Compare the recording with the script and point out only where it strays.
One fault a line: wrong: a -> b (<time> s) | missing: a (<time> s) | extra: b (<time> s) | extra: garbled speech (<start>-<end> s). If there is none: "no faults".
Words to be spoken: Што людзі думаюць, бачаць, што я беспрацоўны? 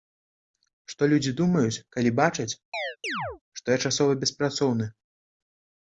extra: калі (2.0 s)
extra: часова (3.9 s)